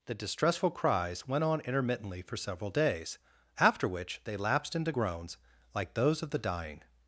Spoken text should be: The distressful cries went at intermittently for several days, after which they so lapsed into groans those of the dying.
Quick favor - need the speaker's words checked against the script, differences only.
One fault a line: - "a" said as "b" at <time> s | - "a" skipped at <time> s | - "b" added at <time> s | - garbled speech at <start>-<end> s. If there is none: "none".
- "at" said as "on" at 1.4 s
- "so" skipped at 4.3 s
- "like" added at 5.7 s